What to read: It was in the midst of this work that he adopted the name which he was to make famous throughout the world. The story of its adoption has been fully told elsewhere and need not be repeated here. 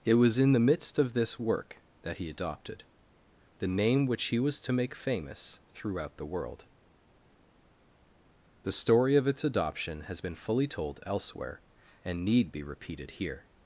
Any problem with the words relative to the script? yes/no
yes